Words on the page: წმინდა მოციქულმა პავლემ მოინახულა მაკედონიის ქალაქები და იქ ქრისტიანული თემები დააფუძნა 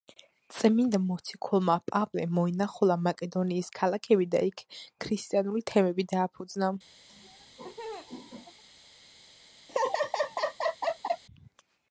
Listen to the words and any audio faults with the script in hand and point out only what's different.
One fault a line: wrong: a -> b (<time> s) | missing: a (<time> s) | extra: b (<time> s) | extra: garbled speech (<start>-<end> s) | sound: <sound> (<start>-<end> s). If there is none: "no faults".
sound: laugh (7.1-8.6 s)
sound: laugh (9.7-11.2 s)